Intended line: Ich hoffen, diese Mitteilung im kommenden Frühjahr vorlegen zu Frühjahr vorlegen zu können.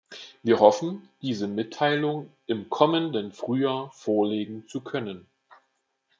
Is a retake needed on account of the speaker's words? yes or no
yes